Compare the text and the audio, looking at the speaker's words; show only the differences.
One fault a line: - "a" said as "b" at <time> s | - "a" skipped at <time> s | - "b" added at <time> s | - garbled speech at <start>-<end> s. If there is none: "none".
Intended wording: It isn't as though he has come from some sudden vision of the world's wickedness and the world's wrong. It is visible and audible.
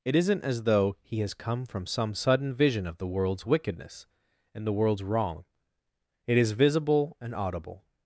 none